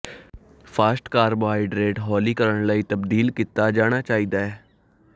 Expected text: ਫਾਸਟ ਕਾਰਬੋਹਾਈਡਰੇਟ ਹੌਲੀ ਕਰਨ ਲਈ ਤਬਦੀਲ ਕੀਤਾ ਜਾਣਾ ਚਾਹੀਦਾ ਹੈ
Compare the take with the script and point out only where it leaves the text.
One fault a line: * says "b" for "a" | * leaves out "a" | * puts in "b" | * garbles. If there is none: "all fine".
all fine